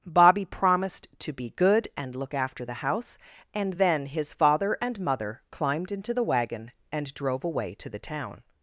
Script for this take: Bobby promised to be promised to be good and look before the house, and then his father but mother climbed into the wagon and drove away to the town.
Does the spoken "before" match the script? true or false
false